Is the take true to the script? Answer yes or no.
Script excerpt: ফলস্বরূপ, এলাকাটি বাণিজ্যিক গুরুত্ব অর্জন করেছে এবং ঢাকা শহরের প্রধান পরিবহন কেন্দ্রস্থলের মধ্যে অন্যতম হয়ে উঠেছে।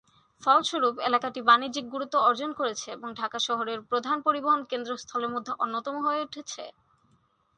yes